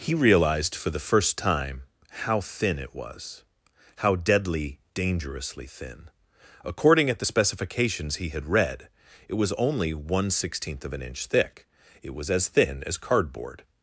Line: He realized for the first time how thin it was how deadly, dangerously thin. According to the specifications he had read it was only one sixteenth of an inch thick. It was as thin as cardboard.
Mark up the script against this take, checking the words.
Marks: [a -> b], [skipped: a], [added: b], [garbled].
He realized for the first time how thin it was how deadly, dangerously thin. According [to -> at] the specifications he had read it was only one sixteenth of an inch thick. It was as thin as cardboard.